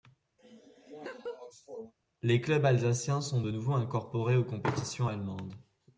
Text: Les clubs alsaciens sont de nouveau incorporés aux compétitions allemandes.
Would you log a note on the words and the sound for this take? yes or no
yes